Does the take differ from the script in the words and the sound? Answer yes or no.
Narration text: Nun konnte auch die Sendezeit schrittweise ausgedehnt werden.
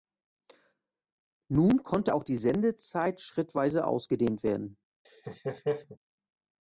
yes